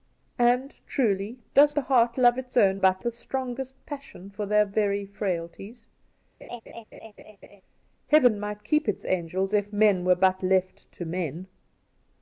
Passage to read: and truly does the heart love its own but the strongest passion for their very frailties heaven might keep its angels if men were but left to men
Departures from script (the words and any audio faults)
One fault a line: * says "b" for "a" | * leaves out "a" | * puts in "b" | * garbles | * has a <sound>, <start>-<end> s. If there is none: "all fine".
* has a laugh, 6.4-7.6 s